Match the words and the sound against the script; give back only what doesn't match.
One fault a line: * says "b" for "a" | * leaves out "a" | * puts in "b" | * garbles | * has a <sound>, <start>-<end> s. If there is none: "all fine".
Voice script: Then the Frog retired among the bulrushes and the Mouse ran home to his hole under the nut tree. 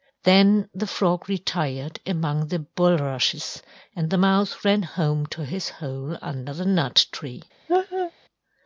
* has a laugh, 7.7-8.1 s